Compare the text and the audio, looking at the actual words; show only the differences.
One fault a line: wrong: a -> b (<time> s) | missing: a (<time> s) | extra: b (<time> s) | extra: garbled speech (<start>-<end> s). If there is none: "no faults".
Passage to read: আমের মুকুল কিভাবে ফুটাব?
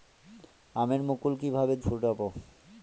no faults